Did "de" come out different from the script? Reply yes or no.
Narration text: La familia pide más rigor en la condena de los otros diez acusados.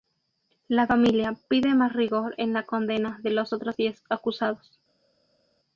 no